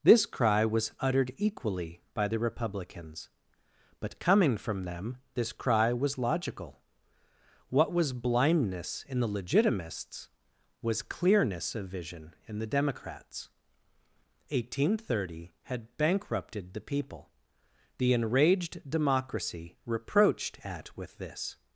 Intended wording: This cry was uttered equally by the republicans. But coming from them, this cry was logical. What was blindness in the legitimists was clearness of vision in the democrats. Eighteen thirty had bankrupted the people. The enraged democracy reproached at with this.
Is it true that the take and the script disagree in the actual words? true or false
false